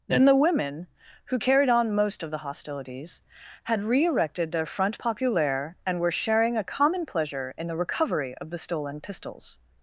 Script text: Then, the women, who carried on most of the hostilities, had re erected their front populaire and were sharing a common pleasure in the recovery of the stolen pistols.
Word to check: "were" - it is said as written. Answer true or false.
true